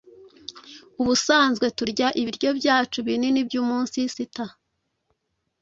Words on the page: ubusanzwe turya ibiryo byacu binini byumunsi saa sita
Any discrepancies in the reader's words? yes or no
yes